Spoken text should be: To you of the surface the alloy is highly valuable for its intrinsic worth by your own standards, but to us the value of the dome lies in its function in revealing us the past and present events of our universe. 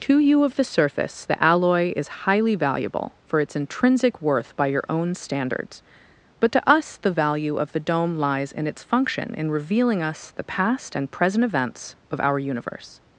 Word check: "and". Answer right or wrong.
right